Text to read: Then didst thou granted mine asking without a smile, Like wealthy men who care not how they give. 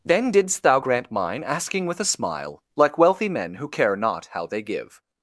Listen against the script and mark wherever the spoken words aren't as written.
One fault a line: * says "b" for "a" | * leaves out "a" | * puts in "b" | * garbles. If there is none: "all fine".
* says "grant" for "granted"
* says "with" for "without"